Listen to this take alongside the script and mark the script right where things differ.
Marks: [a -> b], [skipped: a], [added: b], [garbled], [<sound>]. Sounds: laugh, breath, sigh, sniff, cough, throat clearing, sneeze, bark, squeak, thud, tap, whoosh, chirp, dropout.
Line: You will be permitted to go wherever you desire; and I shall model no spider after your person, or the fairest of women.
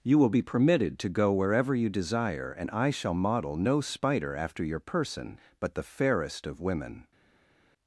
You will be permitted to go wherever you desire; and I shall model no spider after your person, [or -> but] the fairest of women.